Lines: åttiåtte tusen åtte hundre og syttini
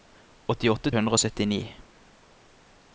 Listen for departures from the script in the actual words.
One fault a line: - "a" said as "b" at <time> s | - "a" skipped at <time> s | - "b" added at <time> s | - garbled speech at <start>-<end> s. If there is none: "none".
- "tusen åtte" skipped at 0.9 s